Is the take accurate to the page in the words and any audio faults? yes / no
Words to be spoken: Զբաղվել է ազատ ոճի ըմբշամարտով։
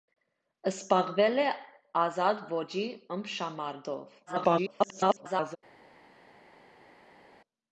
no